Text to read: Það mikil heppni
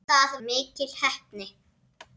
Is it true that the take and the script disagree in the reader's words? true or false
false